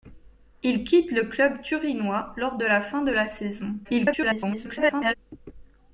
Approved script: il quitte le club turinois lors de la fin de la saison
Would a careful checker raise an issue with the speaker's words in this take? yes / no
yes